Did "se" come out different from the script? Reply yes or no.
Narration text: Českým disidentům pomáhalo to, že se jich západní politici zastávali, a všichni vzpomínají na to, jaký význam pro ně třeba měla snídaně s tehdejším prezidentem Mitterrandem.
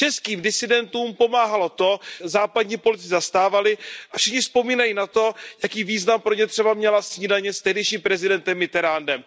yes